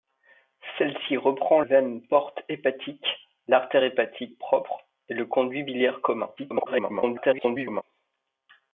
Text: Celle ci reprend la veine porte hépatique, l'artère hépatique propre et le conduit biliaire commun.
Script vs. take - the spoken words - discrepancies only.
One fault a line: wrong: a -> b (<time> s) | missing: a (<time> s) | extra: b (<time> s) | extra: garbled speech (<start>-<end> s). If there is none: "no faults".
missing: la (1.6 s)
extra: garbled speech (6.4-7.8 s)